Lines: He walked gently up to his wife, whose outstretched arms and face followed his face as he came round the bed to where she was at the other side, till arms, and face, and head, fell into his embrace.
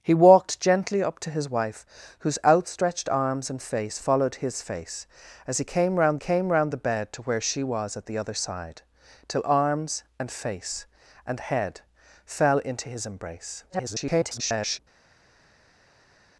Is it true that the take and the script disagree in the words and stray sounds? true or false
true